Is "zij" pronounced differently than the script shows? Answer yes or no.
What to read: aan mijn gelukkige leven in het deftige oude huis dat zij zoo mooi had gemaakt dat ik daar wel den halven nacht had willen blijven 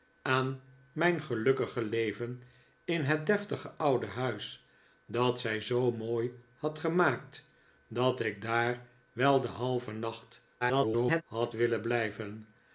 no